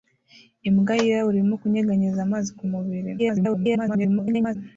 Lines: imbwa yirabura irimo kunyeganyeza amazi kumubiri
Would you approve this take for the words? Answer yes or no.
no